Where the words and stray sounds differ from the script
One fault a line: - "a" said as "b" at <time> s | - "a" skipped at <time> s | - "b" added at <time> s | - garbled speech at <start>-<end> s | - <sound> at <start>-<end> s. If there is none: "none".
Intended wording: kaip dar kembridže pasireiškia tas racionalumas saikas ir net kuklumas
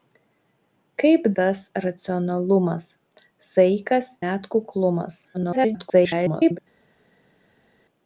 - "dar kembridže pasireiškia" skipped at 1.3 s
- "ir" skipped at 4.2 s
- garbled speech at 5.3-6.6 s